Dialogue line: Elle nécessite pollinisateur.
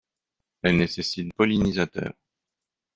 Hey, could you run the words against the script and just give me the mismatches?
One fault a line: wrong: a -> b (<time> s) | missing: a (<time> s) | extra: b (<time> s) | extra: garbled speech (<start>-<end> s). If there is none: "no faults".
no faults